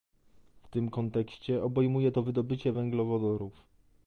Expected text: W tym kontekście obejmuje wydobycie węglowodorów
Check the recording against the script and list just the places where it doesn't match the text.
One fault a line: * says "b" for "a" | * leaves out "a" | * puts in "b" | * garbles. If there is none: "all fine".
* puts in "to"